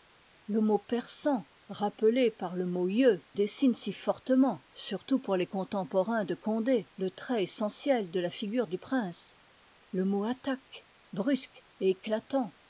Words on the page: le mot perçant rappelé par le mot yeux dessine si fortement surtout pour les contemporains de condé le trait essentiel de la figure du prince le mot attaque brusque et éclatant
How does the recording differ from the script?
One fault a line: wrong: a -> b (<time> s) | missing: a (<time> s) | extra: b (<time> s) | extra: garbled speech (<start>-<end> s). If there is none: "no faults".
no faults